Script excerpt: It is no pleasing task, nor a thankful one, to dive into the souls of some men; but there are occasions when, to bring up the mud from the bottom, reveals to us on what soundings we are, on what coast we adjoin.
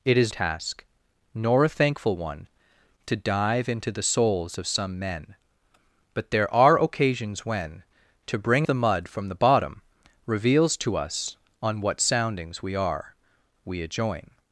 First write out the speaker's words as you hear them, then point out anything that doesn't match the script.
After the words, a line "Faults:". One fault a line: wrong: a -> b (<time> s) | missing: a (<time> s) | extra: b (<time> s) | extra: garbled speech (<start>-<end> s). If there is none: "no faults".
It is task, nor a thankful one, to dive into the souls of some men; but there are occasions when, to bring the mud from the bottom, reveals to us on what soundings we are, we adjoin.
Faults:
missing: no pleasing (0.3 s)
missing: up (8.7 s)
missing: on what coast (13.1 s)